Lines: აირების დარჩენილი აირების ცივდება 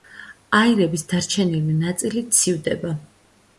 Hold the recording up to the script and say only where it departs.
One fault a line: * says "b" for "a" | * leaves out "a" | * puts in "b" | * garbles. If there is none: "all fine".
* says "ნაწილი" for "აირების"